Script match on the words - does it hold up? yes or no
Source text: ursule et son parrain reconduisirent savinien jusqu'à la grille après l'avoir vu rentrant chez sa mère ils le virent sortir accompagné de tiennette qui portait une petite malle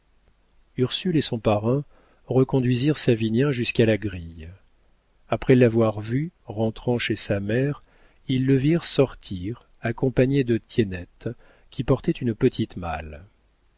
yes